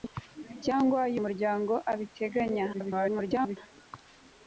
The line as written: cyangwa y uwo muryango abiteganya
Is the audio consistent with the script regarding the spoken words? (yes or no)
no